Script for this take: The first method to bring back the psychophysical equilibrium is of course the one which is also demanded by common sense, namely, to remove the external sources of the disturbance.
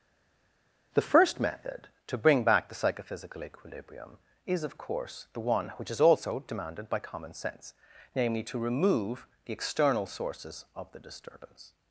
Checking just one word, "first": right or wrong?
right